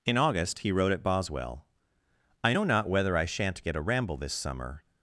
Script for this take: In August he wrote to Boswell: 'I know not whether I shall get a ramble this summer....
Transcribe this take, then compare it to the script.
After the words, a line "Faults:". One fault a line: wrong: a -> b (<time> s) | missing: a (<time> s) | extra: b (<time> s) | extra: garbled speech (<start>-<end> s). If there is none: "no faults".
In August he wrote at Boswell: 'I know not whether I shan't get a ramble this summer....
Faults:
wrong: to -> at (0.9 s)
wrong: shall -> shan't (3.2 s)